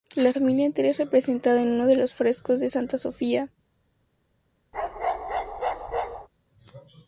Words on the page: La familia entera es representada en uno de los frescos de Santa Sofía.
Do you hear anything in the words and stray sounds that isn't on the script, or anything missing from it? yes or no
yes